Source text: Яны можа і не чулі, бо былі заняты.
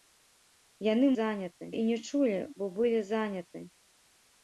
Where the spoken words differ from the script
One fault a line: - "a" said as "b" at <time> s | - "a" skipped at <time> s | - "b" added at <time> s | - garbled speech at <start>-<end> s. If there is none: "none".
- "можа" said as "заняты" at 1.2 s